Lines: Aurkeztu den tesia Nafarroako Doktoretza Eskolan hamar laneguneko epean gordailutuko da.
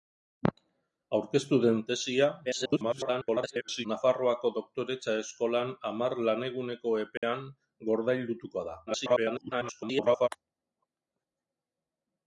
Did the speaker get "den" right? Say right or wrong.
right